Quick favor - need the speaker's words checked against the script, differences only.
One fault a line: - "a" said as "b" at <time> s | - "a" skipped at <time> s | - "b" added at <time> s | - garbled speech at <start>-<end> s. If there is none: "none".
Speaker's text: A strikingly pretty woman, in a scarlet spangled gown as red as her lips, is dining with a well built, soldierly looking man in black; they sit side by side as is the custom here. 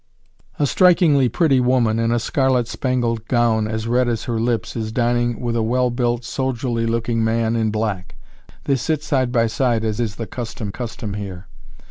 - "custom" added at 10.7 s